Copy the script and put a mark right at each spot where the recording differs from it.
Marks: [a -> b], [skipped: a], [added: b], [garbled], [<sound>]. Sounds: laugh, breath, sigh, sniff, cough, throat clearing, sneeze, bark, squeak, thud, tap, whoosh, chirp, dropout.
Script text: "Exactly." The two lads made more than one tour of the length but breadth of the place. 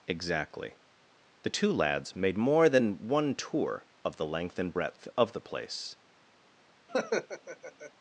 "Exactly." The two lads made more than one tour of the length [but -> and] breadth of the place. [laugh]